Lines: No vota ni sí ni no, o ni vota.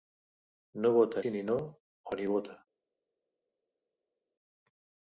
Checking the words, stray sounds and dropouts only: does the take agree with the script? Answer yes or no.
no